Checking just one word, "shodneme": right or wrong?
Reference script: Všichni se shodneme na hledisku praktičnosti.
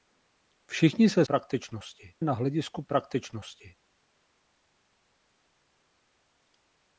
wrong